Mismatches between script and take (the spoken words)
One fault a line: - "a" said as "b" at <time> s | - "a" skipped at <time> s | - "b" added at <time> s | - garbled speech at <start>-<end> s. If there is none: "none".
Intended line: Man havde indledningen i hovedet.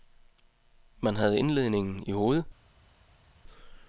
none